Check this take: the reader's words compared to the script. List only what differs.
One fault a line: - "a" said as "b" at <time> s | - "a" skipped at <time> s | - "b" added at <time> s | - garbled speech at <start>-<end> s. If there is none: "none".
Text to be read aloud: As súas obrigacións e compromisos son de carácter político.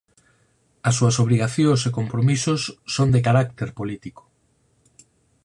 none